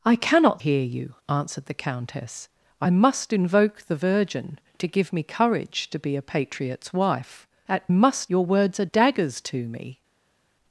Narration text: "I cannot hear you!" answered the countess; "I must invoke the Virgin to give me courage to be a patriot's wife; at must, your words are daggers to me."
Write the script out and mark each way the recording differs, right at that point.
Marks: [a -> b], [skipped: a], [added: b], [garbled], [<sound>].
"I cannot hear you!" answered the countess; "I must invoke the Virgin to give me courage to be a patriot's wife; at must, your words are daggers to me."